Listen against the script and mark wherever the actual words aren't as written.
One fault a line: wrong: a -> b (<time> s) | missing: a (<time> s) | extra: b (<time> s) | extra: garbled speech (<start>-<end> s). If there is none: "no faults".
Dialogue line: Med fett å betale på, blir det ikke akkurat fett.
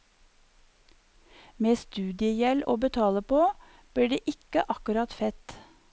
wrong: fett -> studiegjeld (1.7 s)